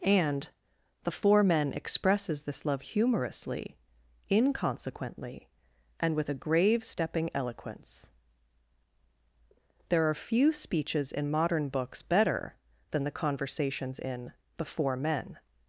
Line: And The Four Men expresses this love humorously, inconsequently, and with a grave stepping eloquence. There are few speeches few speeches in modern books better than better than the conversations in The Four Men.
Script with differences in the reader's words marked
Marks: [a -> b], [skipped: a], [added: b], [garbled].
And The Four Men expresses this love humorously, inconsequently, and with a grave stepping eloquence. There are few speeches [skipped: few speeches] in modern books better than [skipped: better than] the conversations in The Four Men.